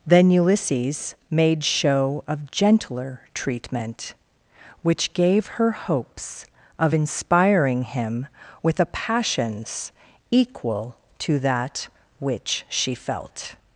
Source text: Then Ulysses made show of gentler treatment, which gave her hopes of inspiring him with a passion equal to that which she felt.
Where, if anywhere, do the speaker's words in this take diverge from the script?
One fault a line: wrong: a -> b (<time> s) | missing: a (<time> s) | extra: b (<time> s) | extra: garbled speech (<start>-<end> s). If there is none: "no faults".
wrong: passion -> passions (8.9 s)